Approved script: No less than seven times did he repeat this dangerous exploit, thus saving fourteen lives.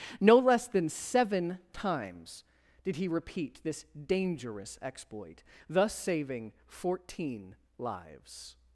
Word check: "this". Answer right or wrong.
right